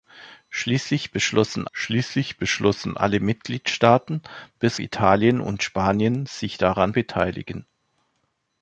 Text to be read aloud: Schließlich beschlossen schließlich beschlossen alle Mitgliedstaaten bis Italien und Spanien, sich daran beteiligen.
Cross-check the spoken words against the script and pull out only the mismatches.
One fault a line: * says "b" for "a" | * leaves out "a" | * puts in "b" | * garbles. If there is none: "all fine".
all fine